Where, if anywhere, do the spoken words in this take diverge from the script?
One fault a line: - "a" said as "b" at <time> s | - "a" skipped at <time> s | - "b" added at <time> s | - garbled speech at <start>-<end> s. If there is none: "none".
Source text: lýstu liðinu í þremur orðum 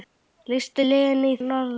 - "þremur" skipped at 1.4 s